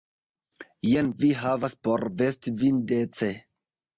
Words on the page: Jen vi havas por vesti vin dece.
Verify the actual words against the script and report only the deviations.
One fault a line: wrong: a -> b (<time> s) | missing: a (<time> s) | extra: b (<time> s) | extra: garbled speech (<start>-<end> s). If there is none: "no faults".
no faults